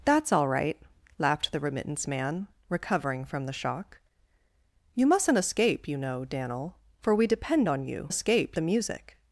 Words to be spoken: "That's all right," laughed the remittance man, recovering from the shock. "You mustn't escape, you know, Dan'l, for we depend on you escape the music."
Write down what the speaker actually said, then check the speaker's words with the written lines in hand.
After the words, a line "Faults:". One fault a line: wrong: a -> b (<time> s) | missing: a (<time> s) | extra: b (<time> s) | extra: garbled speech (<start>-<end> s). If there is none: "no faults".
"That's all right," laughed the remittance man, recovering from the shock. "You mustn't escape, you know, Dan'l, for we depend on you escape the music."
Faults:
no faults